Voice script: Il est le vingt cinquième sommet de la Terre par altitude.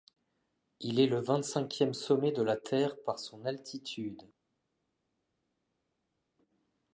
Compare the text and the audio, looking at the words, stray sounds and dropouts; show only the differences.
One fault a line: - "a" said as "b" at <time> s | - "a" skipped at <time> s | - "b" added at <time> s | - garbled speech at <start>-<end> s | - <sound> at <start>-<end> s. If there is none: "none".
- "son" added at 3.2 s